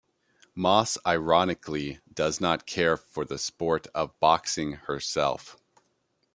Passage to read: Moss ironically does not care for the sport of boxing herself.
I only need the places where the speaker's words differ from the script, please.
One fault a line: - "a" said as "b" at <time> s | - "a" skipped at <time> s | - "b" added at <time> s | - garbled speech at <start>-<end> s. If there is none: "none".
none